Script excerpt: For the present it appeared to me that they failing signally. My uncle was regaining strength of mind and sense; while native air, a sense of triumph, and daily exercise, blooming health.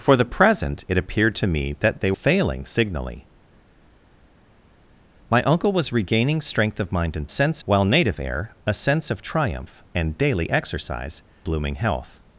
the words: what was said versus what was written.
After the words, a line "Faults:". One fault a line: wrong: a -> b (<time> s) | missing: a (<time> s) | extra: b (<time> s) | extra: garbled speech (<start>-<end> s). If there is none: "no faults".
For the present it appeared to me that they failing signally. My uncle was regaining strength of mind and sense; while native air, a sense of triumph, and daily exercise, blooming health.
Faults:
no faults